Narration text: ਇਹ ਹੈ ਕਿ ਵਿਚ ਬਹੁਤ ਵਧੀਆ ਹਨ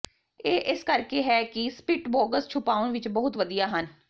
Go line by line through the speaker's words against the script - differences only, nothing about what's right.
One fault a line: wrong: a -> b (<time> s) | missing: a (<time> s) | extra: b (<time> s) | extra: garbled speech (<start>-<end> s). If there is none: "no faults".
extra: ਇਸ ਕਰਕੇ (0.7 s)
extra: ਸਪਿਟਬੋਗਸ ਛੁਪਾਉਣ (1.7 s)